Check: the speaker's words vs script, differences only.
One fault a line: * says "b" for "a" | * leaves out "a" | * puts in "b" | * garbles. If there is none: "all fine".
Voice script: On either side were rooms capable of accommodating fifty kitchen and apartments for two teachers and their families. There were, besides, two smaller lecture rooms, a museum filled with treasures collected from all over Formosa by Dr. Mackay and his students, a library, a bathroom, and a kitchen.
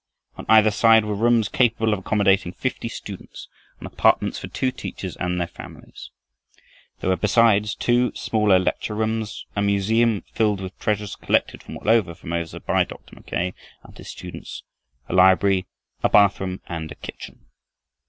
* says "students" for "kitchen"